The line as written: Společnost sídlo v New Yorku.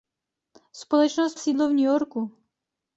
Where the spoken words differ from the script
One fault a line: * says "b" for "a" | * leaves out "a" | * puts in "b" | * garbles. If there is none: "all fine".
all fine